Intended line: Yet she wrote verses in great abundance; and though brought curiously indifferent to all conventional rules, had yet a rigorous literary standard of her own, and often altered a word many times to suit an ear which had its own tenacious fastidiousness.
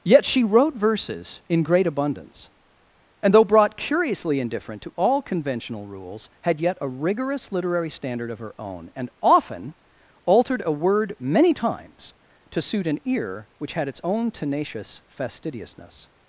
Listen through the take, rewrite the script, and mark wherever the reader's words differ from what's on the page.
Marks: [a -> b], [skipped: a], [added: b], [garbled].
Yet she wrote verses in great abundance; and though brought curiously indifferent to all conventional rules, had yet a rigorous literary standard of her own, and often altered a word many times to suit an ear which had its own tenacious fastidiousness.